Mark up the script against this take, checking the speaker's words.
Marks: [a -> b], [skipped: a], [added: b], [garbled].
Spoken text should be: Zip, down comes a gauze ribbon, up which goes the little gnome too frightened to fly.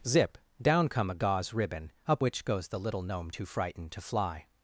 Zip, down [comes -> come] a gauze ribbon, up which goes the little gnome too frightened to fly.